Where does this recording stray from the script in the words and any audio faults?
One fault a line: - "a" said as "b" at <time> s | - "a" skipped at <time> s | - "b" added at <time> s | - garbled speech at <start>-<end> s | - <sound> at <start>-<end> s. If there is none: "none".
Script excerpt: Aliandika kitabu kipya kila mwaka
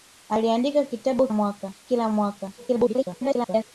- "kipya" said as "mwaka" at 1.3 s
- garbled speech at 2.6-3.7 s